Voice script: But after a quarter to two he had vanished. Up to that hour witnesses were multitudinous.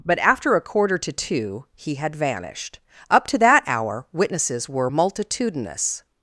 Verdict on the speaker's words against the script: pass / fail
pass